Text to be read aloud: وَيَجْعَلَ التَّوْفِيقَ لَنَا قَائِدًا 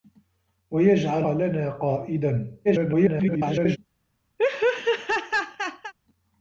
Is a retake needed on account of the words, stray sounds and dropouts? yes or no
yes